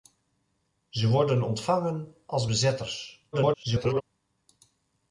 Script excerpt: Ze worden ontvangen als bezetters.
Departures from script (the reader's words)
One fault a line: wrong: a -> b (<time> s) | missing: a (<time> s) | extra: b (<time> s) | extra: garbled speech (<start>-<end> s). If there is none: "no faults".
extra: garbled speech (3.3-4.0 s)